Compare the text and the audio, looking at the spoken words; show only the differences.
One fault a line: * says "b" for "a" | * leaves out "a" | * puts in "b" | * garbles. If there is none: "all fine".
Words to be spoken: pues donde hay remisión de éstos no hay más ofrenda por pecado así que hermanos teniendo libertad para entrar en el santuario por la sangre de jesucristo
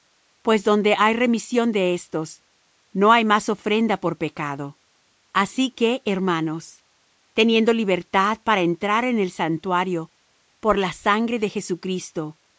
all fine